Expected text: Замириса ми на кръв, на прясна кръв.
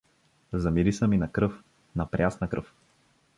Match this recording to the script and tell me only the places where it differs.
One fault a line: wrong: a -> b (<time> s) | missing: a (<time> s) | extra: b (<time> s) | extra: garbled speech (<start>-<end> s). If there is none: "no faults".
no faults